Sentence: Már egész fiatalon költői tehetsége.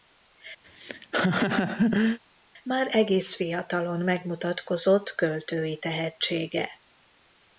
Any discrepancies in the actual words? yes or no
yes